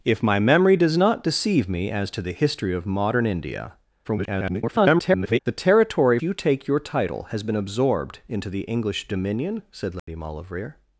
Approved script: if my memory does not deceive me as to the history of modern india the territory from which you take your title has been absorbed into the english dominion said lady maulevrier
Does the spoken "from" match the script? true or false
false